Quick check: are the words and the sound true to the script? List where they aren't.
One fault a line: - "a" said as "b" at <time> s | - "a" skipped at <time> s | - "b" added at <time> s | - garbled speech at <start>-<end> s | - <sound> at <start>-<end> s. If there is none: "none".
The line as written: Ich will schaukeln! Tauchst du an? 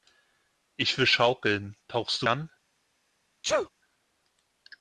- sneeze at 3.4-3.7 s